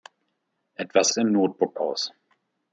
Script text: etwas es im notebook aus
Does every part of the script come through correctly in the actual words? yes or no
yes